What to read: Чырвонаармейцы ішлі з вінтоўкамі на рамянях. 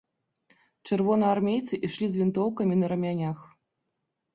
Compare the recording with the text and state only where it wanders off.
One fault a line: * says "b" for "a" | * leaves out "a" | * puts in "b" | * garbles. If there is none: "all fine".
all fine